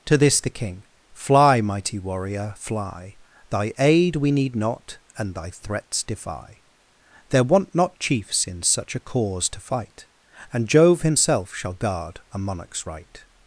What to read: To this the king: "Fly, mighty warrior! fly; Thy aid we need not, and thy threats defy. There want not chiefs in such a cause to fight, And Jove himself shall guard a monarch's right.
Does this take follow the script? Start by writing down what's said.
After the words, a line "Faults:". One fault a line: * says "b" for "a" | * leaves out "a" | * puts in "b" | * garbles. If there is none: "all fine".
To this the king: "Fly, mighty warrior! fly; Thy aid we need not, and thy threats defy. There want not chiefs in such a cause to fight, And Jove himself shall guard a monarch's right.
Faults:
all fine